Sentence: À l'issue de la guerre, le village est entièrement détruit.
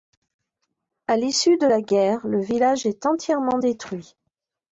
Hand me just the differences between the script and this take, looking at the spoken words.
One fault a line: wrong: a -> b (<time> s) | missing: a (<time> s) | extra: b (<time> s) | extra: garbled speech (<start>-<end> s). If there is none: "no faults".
no faults